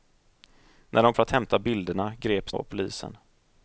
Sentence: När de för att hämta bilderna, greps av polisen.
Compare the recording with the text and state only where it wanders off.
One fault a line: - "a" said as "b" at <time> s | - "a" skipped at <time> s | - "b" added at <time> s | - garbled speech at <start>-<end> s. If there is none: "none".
none